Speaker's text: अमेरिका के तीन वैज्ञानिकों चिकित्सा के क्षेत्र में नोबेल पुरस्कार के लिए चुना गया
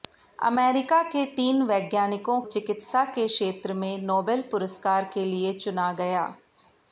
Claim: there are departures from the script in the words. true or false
false